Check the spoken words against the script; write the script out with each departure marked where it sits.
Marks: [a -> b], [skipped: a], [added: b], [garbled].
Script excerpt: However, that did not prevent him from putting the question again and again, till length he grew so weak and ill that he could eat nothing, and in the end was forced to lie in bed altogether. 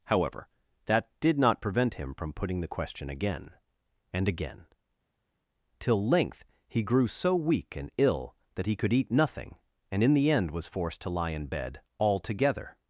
However, that did not prevent him from putting the question again and again, till length he grew so weak and ill that he could eat nothing, and in the end was forced to lie in bed altogether.